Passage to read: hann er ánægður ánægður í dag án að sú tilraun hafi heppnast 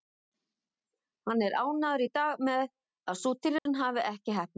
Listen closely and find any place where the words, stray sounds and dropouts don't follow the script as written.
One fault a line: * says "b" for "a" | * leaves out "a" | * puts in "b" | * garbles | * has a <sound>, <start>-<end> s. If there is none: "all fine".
* leaves out "ánægður"
* says "með" for "án"
* has a dropout, 3.6-3.7 s
* puts in "ekki"